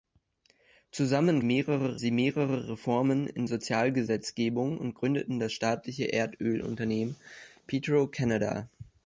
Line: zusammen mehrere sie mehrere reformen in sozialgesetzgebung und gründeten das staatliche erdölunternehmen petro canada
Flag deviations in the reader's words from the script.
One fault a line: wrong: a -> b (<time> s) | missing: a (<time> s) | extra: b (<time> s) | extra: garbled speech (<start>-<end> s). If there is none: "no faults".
no faults